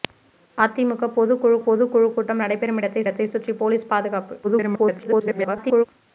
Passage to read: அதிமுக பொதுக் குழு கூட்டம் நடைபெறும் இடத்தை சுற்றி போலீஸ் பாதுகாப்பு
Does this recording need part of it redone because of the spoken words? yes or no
yes